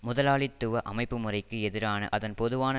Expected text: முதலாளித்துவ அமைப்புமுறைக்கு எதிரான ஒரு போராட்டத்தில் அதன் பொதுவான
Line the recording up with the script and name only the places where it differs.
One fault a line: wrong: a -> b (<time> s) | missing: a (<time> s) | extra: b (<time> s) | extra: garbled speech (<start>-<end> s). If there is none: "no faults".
missing: ஒரு போராட்டத்தில் (2.1 s)